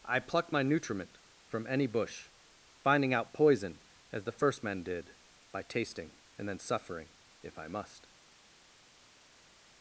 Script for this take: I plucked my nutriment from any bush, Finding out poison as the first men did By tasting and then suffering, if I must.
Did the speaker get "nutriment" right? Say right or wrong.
right